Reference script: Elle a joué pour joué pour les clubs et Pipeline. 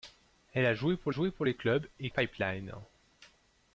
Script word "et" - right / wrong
right